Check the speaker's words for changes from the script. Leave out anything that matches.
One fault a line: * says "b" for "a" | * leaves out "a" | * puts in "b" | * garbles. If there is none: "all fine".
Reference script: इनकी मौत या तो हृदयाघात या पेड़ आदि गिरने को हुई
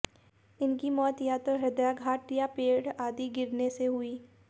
* says "से" for "को"